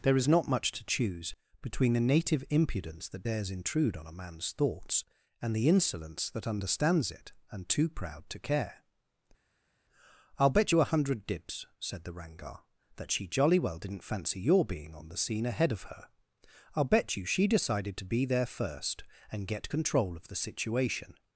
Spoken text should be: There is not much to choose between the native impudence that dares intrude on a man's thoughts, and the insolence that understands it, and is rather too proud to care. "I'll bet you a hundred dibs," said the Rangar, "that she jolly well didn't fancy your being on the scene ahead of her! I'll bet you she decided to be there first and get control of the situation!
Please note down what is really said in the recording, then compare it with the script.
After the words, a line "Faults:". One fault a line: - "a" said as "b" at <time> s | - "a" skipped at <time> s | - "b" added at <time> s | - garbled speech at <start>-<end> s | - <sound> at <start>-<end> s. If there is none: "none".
There is not much to choose between the native impudence that dares intrude on a man's thoughts, and the insolence that understands it, and too proud to care. "I'll bet you a hundred dibs," said the Rangar, "that she jolly well didn't fancy your being on the scene ahead of her! I'll bet you she decided to be there first and get control of the situation!
Faults:
- "is rather" skipped at 7.7 s